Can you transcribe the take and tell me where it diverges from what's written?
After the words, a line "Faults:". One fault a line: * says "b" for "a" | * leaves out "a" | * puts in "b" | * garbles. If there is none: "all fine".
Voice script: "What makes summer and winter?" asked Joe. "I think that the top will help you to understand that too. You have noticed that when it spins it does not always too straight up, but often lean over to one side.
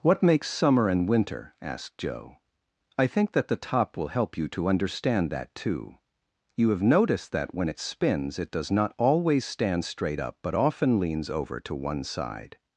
"What makes summer and winter?" asked Joe. "I think that the top will help you to understand that too. You have noticed that when it spins it does not always stand straight up, but often leans over to one side.
Faults:
* says "stand" for "too"
* says "leans" for "lean"